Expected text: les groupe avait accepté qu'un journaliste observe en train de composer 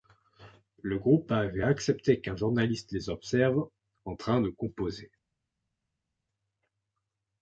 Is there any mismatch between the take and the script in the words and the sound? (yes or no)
yes